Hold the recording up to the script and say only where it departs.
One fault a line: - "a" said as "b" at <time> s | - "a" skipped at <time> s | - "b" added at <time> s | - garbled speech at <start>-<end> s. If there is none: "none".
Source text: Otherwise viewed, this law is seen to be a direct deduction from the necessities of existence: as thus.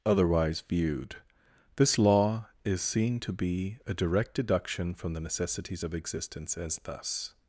none